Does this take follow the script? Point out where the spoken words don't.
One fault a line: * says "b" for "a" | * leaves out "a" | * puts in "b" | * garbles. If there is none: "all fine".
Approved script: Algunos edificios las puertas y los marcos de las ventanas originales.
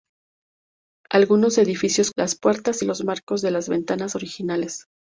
all fine